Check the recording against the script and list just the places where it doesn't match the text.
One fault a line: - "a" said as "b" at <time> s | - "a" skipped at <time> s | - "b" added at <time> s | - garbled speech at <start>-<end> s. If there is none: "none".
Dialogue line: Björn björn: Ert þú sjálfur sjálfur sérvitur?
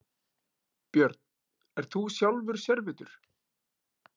- "björn" skipped at 1.2 s
- "sjálfur" skipped at 2.6 s